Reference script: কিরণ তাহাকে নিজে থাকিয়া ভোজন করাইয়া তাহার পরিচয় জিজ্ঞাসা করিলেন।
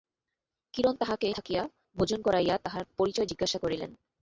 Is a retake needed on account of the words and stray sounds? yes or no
yes